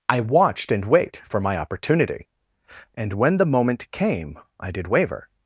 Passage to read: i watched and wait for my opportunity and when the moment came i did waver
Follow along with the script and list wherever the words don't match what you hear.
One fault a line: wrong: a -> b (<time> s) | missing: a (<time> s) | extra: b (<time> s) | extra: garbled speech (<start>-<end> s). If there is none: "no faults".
no faults